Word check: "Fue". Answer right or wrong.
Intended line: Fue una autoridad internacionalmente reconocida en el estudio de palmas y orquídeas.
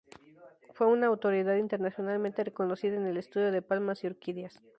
right